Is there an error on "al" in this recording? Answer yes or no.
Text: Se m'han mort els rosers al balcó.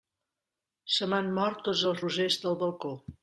yes